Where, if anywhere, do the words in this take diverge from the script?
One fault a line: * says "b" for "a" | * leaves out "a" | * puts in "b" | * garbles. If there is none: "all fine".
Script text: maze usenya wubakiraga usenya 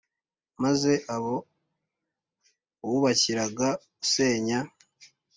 * says "abo" for "usenya"